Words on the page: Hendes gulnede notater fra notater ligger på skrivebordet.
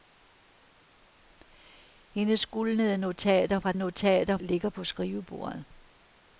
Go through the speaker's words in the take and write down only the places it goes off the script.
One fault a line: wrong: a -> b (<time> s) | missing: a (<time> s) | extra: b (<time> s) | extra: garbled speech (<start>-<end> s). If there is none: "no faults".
no faults